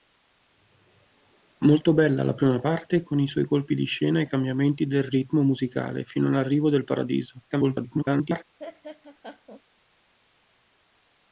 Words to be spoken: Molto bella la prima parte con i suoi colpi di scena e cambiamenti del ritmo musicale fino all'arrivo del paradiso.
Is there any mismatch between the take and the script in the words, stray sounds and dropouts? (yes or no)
yes